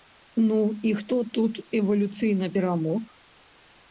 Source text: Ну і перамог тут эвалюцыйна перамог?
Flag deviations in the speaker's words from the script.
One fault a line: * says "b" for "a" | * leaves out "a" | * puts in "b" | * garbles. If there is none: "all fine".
* says "хто" for "перамог"